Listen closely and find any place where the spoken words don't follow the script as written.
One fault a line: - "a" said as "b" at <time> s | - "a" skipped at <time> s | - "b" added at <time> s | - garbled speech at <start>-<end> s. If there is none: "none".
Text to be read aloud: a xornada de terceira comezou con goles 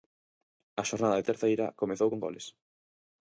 none